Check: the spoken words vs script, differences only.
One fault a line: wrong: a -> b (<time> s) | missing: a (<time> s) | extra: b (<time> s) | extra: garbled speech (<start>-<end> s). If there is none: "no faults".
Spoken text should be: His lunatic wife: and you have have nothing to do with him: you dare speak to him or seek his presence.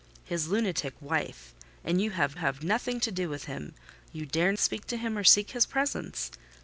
no faults